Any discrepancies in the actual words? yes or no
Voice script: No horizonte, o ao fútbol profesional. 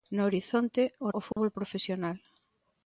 no